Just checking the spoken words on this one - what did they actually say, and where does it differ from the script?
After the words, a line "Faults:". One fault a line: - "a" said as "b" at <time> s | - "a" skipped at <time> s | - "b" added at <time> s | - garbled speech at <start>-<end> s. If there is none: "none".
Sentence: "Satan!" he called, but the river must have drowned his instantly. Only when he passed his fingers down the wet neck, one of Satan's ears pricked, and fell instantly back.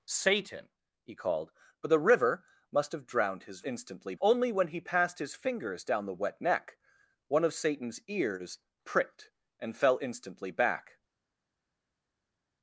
"Satan!" he called, but the river must have drowned his instantly. Only when he passed his fingers down the wet neck, one of Satan's ears pricked, and fell instantly back.
Faults:
none